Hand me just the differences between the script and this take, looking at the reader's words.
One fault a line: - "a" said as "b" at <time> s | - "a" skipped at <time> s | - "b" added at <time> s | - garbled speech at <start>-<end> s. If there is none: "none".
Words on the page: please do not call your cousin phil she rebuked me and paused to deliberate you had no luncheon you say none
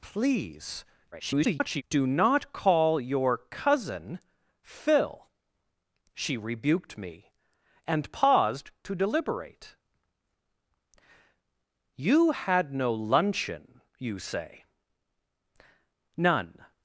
- garbled speech at 1.1-1.8 s